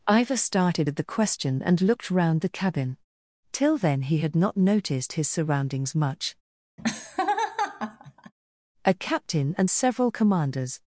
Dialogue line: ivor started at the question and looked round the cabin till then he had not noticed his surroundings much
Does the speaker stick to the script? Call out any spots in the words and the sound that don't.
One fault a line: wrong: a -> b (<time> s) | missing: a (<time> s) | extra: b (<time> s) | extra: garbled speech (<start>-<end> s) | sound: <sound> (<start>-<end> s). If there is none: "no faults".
sound: laugh (6.8-8.3 s)
extra: a captain and several commanders (8.9 s)